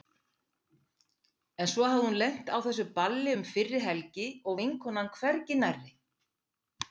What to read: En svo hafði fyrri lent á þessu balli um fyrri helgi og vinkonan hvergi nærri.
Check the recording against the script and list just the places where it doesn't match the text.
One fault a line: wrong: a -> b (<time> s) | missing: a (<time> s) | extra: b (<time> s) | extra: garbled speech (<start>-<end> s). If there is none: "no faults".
wrong: fyrri -> hún (2.1 s)